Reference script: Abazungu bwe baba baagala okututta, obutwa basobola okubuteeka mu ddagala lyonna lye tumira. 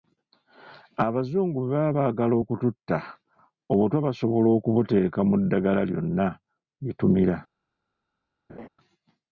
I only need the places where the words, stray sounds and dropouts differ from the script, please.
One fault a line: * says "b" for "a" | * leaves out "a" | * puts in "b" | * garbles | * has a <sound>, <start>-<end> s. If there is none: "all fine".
* has a laugh, 8.5-8.7 s